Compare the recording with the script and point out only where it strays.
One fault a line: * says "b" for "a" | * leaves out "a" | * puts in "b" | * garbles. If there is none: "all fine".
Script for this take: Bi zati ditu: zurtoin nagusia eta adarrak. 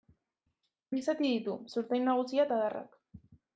all fine